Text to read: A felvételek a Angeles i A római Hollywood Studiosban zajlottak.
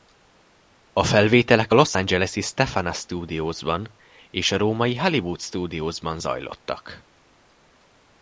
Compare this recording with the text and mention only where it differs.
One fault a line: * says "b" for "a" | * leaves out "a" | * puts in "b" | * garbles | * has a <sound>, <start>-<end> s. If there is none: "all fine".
* puts in "Los"
* puts in "Stefana Studiosban és"